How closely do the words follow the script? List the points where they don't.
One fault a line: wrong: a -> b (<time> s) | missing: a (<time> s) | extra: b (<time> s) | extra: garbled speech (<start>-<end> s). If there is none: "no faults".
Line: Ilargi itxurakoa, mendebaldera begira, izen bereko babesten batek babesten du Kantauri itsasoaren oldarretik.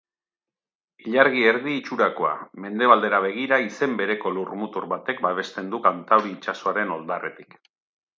extra: erdi (1.5 s)
wrong: babesten -> lurmutur (4.4 s)